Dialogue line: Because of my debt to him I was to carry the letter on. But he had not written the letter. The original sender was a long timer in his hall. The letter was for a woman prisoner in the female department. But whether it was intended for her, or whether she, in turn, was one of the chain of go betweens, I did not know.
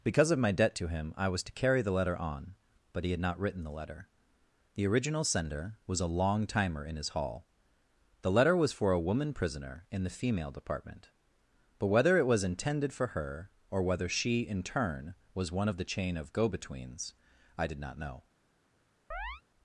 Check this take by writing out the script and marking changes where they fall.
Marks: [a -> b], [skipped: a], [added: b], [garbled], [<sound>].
Because of my debt to him I was to carry the letter on. But he had not written the letter. The original sender was a long timer in his hall. The letter was for a woman prisoner in the female department. But whether it was intended for her, or whether she, in turn, was one of the chain of go betweens, I did not know. [chirp]